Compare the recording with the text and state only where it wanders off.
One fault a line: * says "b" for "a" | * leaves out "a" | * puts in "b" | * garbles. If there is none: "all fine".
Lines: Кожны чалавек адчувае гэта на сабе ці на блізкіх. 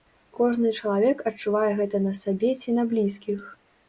all fine